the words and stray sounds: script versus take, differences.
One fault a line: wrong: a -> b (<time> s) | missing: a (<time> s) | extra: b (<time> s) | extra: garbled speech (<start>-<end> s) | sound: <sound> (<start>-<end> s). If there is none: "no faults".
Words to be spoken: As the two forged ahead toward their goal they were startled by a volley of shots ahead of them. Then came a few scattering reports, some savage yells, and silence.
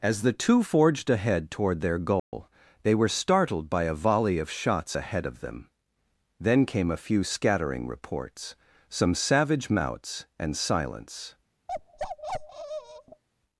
sound: dropout (2.2-2.3 s)
wrong: yells -> mouts (9.7 s)
sound: bark (11.7-13.2 s)